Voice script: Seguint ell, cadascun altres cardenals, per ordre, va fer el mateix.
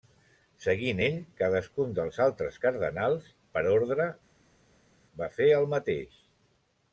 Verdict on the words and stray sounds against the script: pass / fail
fail